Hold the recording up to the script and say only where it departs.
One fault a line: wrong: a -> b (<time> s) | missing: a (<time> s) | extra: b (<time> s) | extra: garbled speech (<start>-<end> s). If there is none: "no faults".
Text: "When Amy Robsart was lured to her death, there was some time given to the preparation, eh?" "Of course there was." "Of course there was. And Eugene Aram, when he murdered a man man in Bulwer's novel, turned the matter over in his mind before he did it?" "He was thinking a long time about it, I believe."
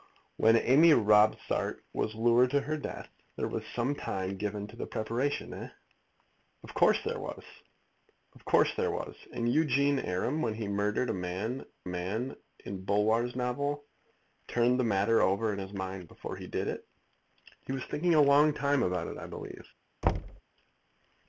no faults